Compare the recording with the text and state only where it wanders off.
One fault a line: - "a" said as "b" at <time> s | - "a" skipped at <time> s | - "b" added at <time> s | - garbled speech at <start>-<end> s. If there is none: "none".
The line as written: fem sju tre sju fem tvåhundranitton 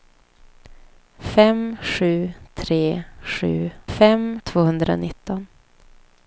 none